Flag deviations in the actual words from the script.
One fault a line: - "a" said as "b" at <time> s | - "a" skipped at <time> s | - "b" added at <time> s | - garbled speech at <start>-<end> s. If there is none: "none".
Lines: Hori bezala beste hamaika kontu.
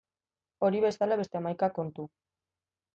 none